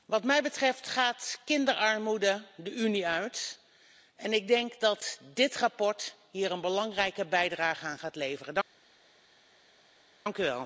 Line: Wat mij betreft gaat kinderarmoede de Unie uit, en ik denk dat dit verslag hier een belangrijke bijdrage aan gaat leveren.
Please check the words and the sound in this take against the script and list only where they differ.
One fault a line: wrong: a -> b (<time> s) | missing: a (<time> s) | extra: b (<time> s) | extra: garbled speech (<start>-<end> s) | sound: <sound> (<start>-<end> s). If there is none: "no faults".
no faults